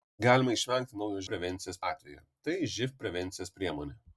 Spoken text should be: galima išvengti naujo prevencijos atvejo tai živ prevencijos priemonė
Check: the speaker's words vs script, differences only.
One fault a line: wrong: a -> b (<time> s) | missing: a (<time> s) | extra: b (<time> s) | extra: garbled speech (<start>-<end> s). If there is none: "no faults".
no faults